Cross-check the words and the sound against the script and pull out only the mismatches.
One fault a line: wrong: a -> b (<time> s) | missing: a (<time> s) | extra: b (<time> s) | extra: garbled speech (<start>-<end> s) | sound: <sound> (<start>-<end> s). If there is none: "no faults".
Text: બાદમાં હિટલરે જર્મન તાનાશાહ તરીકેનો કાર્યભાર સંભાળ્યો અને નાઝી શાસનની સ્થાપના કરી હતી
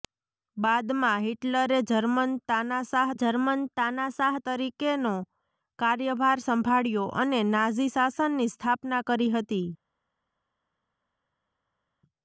extra: જર્મન તાનાશાહ (3.1 s)